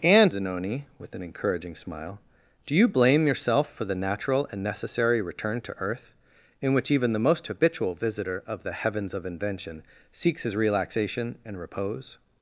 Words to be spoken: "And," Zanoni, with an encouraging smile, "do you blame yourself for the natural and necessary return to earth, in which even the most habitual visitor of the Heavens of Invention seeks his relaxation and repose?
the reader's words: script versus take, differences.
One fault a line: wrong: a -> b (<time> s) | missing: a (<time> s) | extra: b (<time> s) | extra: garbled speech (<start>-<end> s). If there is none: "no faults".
no faults